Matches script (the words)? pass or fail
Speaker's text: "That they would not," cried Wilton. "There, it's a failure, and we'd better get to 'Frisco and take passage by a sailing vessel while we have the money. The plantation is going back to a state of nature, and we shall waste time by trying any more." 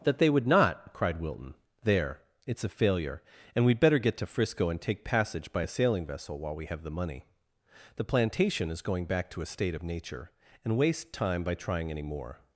fail